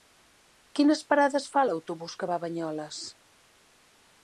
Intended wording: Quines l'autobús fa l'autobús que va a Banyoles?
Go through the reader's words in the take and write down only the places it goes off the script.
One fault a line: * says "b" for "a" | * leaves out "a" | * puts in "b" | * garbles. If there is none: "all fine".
* says "parades" for "l'autobús"